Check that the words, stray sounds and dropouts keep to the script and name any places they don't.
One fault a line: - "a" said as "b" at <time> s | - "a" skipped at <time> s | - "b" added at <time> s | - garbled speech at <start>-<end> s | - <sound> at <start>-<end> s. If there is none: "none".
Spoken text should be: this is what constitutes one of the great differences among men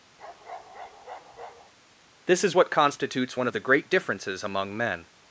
- bark at 0.2-1.7 s